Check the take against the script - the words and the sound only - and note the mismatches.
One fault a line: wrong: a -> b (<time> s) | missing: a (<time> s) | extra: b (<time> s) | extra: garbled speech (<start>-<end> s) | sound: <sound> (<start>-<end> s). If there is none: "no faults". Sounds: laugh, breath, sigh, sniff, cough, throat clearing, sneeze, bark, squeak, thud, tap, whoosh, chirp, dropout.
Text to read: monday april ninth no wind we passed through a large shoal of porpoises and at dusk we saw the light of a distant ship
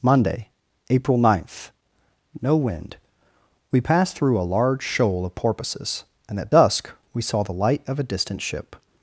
no faults